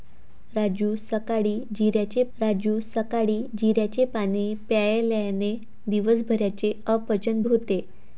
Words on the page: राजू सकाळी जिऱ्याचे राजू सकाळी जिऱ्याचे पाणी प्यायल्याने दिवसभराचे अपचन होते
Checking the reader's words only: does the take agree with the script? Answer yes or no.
yes